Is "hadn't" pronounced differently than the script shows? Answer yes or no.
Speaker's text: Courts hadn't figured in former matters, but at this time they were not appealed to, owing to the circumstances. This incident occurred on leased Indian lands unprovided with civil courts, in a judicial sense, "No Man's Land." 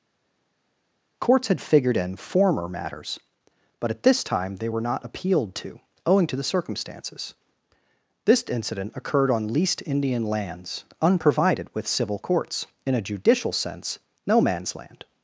yes